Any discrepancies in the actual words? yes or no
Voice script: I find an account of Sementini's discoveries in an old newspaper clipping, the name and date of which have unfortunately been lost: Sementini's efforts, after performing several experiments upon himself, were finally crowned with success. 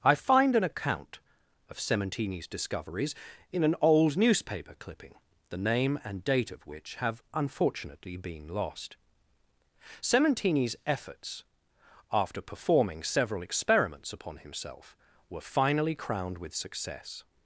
no